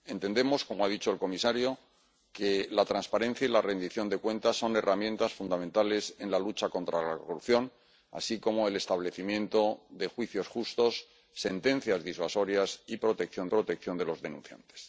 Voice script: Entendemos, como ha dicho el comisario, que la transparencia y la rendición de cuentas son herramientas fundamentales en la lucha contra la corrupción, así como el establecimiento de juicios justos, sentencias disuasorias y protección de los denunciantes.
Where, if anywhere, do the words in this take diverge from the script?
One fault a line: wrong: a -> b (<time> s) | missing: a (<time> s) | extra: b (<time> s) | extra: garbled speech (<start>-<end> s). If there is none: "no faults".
extra: protección (13.5 s)